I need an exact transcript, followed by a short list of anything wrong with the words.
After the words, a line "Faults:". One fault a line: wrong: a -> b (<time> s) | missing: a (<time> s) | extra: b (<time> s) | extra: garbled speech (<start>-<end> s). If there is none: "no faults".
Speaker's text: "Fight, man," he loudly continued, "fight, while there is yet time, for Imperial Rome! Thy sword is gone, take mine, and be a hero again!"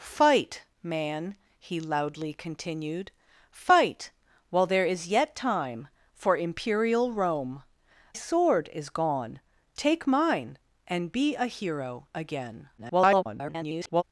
"Fight, man," he loudly continued, "fight, while there is yet time, for Imperial Rome! Sword is gone, take mine, and be a hero again!" [garbled]
Faults:
missing: Thy (7.6 s)
extra: garbled speech (12.8-14.0 s)